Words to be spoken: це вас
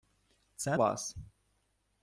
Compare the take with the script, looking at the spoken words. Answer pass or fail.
pass